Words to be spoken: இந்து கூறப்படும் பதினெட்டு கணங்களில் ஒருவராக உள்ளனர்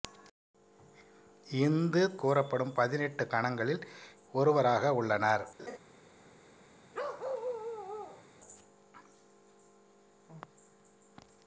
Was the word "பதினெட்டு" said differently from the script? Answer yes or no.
no